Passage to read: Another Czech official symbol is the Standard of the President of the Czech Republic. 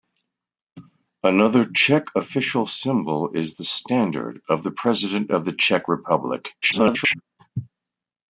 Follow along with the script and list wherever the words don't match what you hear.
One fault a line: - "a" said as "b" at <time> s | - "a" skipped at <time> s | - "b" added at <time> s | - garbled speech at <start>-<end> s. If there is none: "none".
- garbled speech at 6.6-7.2 s